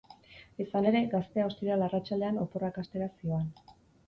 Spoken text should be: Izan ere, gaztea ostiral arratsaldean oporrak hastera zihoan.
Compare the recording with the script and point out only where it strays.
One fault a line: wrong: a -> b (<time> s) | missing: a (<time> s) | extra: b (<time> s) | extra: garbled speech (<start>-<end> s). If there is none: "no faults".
no faults